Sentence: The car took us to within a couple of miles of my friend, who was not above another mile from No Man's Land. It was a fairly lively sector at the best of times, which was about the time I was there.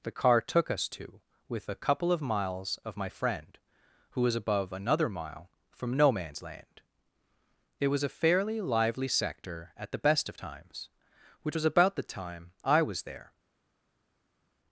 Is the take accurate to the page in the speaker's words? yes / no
no